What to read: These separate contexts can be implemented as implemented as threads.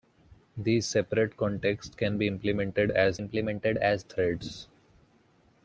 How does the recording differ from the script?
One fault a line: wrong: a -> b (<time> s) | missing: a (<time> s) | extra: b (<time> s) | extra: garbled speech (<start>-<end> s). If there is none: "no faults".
no faults